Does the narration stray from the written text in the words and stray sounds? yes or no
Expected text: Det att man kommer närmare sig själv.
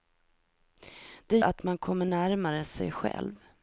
no